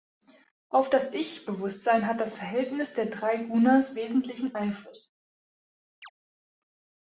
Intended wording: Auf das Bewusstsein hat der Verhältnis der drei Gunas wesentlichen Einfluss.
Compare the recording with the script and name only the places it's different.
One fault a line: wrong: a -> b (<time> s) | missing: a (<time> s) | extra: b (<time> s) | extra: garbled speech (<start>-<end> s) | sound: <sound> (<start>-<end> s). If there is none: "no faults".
extra: Ich (1.1 s)
wrong: der -> das (2.2 s)
sound: chirp (6.0-6.1 s)